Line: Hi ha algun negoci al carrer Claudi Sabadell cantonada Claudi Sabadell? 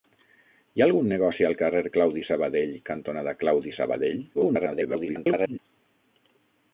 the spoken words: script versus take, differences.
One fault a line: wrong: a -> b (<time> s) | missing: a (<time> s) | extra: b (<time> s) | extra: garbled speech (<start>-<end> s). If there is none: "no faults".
extra: garbled speech (4.3-5.6 s)